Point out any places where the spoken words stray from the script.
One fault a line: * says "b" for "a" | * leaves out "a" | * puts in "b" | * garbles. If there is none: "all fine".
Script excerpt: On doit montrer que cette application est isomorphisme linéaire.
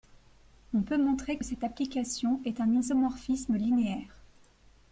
* says "peut" for "doit"
* puts in "un"